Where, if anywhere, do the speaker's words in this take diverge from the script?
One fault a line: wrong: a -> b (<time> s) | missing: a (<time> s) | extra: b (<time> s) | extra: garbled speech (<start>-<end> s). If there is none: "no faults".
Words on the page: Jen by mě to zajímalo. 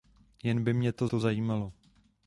extra: to (1.0 s)